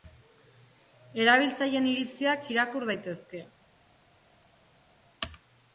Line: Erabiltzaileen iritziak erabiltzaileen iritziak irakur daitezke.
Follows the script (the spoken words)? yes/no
no